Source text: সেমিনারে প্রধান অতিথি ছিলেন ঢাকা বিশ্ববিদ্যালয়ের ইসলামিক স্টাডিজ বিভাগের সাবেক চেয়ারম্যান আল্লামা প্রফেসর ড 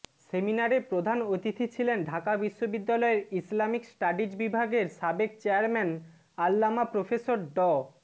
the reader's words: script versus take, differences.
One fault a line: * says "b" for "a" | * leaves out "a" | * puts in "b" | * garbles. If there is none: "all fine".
all fine